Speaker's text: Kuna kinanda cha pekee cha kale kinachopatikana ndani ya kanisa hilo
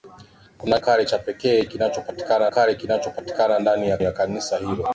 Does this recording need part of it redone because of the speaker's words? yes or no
yes